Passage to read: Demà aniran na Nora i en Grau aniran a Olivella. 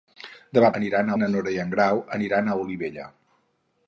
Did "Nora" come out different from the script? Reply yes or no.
no